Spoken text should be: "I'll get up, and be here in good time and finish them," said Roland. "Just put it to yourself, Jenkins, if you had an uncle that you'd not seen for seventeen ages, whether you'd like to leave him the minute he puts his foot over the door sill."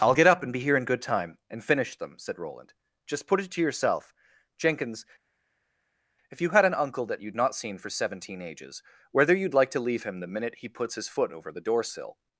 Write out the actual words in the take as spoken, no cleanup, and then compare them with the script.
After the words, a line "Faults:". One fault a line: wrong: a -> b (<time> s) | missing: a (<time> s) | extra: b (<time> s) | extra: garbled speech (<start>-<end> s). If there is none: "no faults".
"I'll get up, and be here in good time and finish them," said Roland. "Just put it to yourself, Jenkins, if you had an uncle that you'd not seen for seventeen ages, whether you'd like to leave him the minute he puts his foot over the door sill."
Faults:
no faults